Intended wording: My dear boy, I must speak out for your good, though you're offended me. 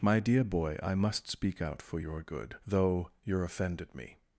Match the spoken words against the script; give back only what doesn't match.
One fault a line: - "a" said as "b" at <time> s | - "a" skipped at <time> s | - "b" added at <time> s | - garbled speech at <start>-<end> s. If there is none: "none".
none